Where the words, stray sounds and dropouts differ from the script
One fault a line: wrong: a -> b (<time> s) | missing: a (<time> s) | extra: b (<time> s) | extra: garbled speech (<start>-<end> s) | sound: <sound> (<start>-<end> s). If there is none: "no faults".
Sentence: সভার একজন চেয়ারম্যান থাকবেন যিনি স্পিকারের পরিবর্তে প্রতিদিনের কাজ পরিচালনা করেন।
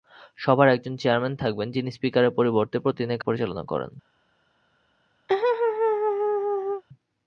missing: কাজ (3.2 s)
sound: laugh (5.3-6.8 s)